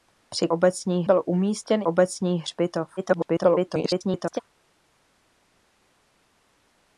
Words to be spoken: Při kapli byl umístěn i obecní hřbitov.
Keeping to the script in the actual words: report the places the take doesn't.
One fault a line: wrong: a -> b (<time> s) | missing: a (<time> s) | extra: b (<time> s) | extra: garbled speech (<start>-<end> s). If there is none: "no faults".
wrong: kapli -> obecní (0.5 s)
missing: i (1.8 s)
extra: garbled speech (3.0-4.4 s)